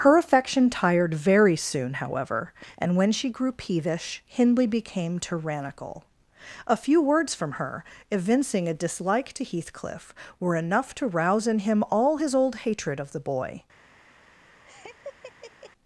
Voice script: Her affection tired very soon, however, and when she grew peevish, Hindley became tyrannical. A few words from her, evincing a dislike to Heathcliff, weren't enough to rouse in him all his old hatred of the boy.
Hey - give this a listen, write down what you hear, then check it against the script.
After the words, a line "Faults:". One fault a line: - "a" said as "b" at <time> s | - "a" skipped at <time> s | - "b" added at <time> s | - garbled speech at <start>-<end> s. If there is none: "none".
Her affection tired very soon, however, and when she grew peevish, Hindley became tyrannical. A few words from her, evincing a dislike to Heathcliff, were enough to rouse in him all his old hatred of the boy.
Faults:
- "weren't" said as "were" at 10.4 s